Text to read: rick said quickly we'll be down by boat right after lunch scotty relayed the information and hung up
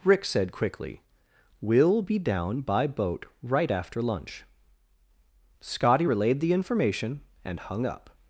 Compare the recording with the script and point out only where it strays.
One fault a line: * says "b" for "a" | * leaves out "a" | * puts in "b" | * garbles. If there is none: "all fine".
all fine